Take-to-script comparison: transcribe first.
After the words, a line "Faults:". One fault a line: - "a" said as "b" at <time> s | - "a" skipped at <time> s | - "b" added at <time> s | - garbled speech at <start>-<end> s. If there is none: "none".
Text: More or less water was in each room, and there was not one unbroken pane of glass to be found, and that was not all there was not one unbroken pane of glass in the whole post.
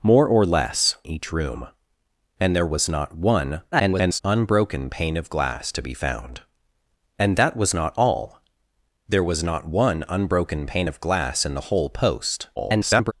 More or less each room, and there was not one [garbled] unbroken pane of glass to be found, and that was not all there was not one unbroken pane of glass in the whole post. [garbled]
Faults:
- "water was in" skipped at 1.0 s
- garbled speech at 3.7-4.2 s
- garbled speech at 12.6-13.1 s